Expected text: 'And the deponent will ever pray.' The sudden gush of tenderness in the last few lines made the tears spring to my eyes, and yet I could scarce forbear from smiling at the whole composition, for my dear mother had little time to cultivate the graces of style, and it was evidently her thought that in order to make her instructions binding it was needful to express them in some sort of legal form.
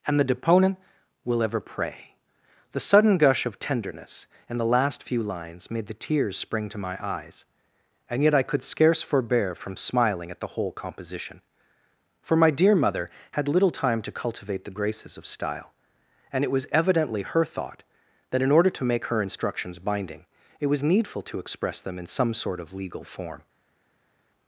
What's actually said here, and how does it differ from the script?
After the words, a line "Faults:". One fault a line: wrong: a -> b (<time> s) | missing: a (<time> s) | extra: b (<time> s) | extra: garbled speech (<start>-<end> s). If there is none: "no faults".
'And the deponent will ever pray.' The sudden gush of tenderness in the last few lines made the tears spring to my eyes, and yet I could scarce forbear from smiling at the whole composition, for my dear mother had little time to cultivate the graces of style, and it was evidently her thought that in order to make her instructions binding it was needful to express them in some sort of legal form.
Faults:
no faults